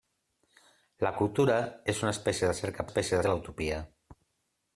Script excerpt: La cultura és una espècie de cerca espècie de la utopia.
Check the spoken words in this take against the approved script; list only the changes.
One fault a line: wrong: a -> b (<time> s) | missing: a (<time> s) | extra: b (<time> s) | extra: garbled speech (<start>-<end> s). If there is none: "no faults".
no faults